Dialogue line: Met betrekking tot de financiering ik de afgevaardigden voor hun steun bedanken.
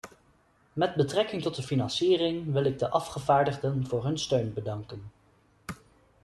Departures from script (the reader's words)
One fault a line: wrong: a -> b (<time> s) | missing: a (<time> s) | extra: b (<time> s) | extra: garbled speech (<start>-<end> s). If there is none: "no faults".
extra: wil (2.5 s)